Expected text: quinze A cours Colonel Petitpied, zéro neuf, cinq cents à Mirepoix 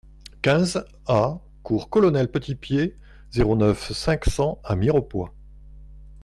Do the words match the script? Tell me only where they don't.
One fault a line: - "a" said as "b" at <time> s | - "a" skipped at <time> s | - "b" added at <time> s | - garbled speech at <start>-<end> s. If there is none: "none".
none